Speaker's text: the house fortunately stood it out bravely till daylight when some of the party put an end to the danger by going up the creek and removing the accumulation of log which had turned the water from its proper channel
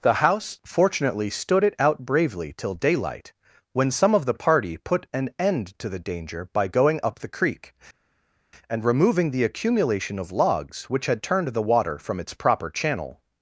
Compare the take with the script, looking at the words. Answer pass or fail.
fail